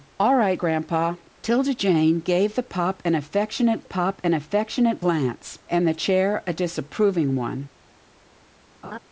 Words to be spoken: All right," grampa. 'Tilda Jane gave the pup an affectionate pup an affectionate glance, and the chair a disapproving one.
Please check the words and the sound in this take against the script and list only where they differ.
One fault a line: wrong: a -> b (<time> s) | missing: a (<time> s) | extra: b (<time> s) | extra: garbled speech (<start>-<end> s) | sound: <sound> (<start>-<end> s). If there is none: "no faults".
sound: laugh (8.8-9.0 s)